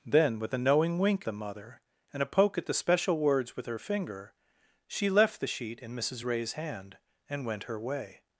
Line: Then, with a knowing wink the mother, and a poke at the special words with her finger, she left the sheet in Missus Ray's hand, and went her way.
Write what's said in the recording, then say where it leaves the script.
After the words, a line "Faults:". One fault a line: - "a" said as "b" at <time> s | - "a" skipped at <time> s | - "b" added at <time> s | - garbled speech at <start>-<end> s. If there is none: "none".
Then, with a knowing wink the mother, and a poke at the special words with her finger, she left the sheet in Missus Ray's hand, and went her way.
Faults:
none